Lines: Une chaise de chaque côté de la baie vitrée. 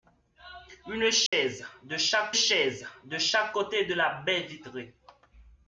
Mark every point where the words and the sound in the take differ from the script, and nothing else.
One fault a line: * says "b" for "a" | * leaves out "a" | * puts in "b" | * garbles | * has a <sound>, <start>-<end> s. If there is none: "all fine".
* has a dropout, 1.3-1.3 s
* puts in "chaise de chaque"